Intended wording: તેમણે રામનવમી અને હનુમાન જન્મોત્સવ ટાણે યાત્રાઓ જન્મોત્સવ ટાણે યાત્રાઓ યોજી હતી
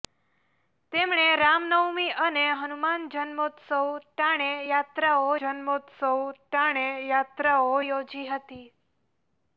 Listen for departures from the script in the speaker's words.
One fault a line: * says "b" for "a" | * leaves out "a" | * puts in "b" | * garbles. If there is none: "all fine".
all fine